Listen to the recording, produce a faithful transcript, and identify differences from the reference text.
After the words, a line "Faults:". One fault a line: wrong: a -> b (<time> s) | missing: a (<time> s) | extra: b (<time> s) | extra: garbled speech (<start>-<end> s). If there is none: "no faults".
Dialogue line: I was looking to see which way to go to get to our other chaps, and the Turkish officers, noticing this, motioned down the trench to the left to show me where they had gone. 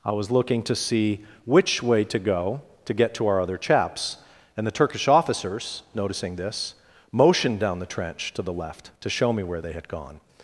I was looking to see which way to go to get to our other chaps, and the Turkish officers, noticing this, motioned down the trench to the left to show me where they had gone.
Faults:
no faults